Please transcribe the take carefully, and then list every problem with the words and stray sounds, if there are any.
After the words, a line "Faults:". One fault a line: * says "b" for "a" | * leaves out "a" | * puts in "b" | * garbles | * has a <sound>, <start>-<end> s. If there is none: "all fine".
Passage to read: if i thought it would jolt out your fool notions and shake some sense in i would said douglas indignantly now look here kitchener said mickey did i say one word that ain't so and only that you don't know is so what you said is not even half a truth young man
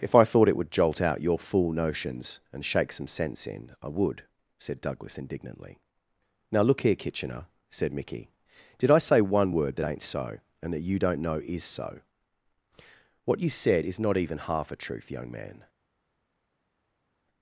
if i thought it would jolt out your fool notions and shake some sense in i would said douglas indignantly now look here kitchener said mickey did i say one word that ain't so and that you don't know is so what you said is not even half a truth young man
Faults:
* leaves out "only"